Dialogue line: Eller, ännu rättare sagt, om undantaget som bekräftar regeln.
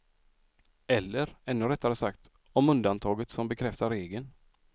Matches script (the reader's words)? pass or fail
pass